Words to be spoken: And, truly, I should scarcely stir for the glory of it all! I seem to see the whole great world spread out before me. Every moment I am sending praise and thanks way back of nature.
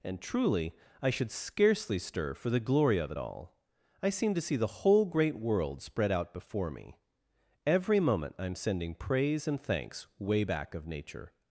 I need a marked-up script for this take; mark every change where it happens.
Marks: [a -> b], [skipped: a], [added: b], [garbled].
And, truly, I should scarcely stir for the glory of it all! I seem to see the whole great world spread out before me. Every moment I am sending praise and thanks way back of nature.